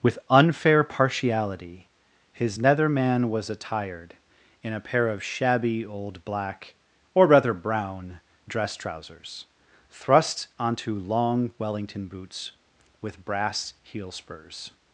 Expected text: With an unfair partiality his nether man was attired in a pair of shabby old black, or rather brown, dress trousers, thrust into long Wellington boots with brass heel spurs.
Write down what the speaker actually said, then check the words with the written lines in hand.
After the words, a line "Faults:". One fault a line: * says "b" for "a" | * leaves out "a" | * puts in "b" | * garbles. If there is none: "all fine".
With unfair partiality his nether man was attired in a pair of shabby old black, or rather brown, dress trousers, thrust onto long Wellington boots with brass heel spurs.
Faults:
* leaves out "an"
* says "onto" for "into"